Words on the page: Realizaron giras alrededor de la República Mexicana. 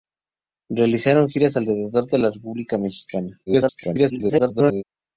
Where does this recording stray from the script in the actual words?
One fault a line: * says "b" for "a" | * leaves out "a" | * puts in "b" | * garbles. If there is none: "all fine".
* garbles